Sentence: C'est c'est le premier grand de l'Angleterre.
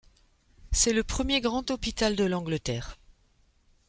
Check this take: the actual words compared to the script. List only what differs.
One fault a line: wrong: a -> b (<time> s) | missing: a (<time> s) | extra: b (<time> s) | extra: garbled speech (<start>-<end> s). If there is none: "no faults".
missing: c'est (0.9 s)
extra: hôpital (1.7 s)